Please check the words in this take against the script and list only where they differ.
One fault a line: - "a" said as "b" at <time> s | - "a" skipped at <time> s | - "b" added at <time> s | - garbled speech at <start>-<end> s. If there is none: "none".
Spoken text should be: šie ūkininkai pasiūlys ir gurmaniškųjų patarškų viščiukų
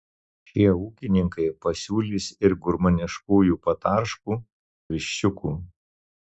none